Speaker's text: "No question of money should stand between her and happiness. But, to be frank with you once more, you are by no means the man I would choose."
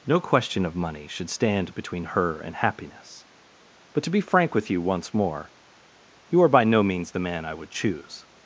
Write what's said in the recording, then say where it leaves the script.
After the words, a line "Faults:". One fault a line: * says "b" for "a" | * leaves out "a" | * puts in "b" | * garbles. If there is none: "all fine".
"No question of money should stand between her and happiness. But, to be frank with you once more, you are by no means the man I would choose."
Faults:
all fine